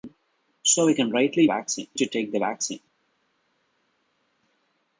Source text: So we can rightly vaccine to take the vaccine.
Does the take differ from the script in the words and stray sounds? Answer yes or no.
no